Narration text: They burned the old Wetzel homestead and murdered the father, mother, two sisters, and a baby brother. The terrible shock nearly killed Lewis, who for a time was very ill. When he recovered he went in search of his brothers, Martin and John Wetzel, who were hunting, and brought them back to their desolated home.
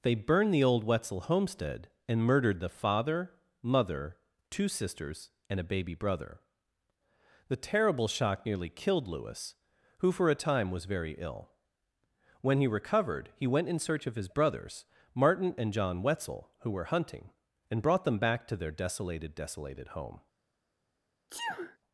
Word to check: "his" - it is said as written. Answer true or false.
true